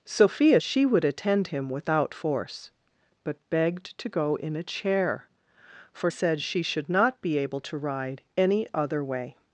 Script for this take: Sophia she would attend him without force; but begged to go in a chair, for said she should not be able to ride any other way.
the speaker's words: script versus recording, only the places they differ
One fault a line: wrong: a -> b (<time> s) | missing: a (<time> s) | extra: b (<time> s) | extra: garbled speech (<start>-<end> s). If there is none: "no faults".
no faults